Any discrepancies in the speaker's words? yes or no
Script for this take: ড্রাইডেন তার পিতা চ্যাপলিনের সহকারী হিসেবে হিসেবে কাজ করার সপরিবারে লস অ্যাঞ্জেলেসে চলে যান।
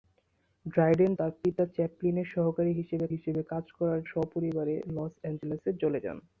no